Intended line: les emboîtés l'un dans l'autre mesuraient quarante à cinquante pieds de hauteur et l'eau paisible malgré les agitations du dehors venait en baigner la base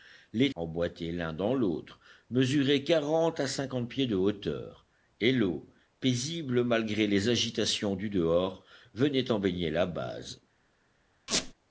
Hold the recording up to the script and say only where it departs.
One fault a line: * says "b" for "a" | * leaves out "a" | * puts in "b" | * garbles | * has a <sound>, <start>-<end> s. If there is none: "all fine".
* has a squeak, 11.3-11.5 s